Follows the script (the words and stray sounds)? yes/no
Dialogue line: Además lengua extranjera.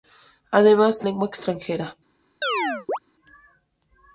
no